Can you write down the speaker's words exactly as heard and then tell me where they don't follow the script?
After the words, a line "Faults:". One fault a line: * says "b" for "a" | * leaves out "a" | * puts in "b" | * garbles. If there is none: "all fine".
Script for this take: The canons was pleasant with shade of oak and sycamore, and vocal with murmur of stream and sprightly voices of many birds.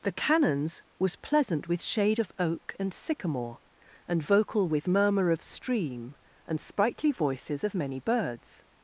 The canons was pleasant with shade of oak and sycamore, and vocal with murmur of stream and sprightly voices of many birds.
Faults:
all fine